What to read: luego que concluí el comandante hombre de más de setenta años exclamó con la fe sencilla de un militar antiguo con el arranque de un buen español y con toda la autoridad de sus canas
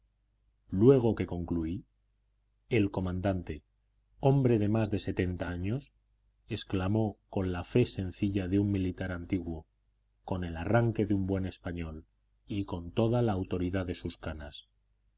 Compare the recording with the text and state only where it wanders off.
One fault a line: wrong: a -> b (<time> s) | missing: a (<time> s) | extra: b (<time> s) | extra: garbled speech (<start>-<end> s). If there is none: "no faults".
no faults